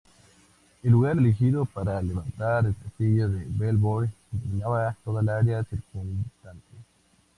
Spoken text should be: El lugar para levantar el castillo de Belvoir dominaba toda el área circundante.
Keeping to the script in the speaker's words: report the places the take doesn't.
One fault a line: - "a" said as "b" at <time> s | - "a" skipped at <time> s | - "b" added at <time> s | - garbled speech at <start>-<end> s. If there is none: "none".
- "elegido" added at 1.2 s